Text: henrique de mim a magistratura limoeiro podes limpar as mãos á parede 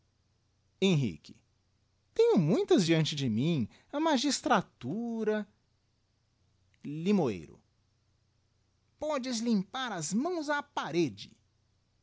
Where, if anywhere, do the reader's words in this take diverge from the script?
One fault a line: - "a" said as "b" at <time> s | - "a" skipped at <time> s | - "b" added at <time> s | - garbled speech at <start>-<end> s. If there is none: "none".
- "tenho muitas diante" added at 2.1 s